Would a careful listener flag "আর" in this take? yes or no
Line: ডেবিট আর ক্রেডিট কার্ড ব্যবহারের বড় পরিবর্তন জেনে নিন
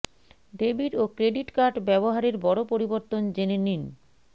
yes